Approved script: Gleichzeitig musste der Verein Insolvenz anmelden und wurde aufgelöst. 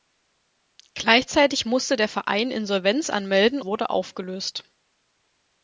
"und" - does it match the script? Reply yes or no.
no